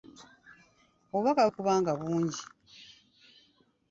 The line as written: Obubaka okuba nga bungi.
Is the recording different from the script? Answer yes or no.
no